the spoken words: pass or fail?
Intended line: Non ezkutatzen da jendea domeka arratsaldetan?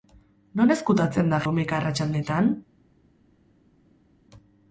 fail